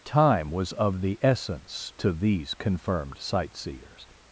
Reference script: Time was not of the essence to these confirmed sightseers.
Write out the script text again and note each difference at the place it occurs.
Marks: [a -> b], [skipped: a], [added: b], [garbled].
Time was [skipped: not] of the essence to these confirmed sightseers.